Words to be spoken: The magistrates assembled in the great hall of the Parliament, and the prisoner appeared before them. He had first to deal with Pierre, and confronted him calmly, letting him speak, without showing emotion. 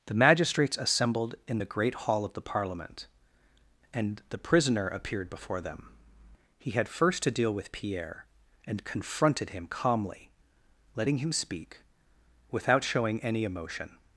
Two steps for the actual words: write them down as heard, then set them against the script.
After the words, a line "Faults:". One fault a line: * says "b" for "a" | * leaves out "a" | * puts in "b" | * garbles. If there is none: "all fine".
The magistrates assembled in the great hall of the Parliament, and the prisoner appeared before them. He had first to deal with Pierre, and confronted him calmly, letting him speak, without showing any emotion.
Faults:
* puts in "any"